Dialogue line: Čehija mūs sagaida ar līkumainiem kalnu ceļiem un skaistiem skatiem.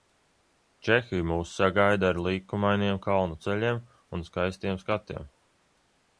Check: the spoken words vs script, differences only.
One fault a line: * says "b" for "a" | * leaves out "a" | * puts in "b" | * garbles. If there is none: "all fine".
all fine